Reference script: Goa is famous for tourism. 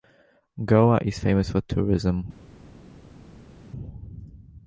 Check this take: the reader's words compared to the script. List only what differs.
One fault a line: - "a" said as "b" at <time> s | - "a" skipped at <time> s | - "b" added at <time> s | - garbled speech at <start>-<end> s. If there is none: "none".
none